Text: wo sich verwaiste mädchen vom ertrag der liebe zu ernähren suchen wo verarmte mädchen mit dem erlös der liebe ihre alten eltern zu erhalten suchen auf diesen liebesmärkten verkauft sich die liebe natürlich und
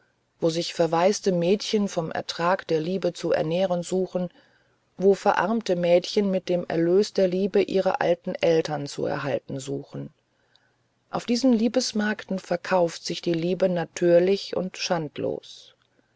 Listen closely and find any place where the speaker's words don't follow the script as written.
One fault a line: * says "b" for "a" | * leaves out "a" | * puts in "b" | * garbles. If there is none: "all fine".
all fine